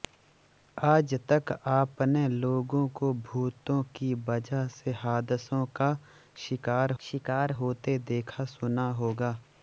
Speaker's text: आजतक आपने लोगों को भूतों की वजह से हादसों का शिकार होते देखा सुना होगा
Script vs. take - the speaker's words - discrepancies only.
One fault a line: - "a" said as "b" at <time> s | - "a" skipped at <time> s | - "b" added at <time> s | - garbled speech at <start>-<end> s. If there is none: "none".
- "शिकार" added at 7.0 s